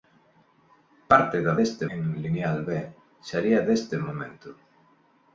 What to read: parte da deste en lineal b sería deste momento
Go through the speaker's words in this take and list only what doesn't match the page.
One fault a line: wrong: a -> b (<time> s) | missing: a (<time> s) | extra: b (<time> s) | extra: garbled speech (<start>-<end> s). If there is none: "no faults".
no faults